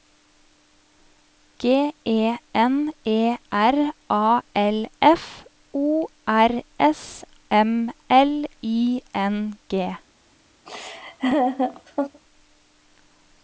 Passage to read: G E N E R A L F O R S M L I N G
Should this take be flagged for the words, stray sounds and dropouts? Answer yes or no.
yes